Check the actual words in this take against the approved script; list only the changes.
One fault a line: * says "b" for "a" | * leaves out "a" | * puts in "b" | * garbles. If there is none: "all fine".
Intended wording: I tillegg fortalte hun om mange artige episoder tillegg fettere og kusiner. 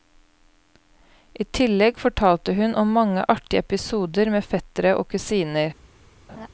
* says "med" for "tillegg"